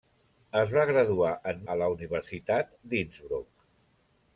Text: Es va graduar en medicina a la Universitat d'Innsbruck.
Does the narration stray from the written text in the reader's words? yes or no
yes